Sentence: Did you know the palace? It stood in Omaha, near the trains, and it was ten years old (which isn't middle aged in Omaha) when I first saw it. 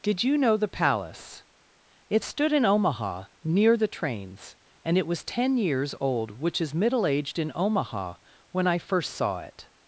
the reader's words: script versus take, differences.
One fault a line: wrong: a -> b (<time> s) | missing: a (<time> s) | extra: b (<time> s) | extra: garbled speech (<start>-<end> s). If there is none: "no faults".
wrong: isn't -> is (6.6 s)